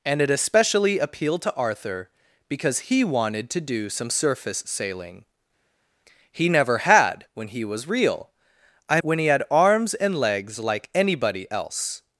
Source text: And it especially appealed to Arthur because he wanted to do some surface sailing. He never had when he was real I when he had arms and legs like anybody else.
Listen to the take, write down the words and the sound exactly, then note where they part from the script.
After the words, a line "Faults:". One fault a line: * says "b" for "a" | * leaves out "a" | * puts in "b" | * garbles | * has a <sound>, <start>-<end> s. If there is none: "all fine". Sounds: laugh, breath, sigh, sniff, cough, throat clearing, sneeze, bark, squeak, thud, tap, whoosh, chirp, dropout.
And it especially appealed to Arthur because he wanted to do some surface sailing. He never had when he was real I when he had arms and legs like anybody else.
Faults:
all fine